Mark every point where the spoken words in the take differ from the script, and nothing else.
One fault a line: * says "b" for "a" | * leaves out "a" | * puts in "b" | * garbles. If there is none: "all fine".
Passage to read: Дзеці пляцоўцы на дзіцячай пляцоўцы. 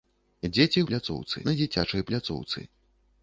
all fine